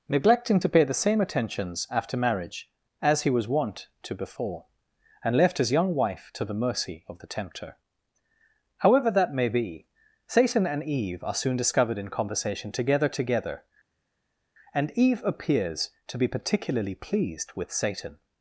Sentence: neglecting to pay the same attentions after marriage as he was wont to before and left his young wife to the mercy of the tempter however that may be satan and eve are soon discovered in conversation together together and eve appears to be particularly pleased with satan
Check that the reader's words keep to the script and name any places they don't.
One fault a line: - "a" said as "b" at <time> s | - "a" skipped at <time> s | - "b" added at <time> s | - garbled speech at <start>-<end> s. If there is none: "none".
none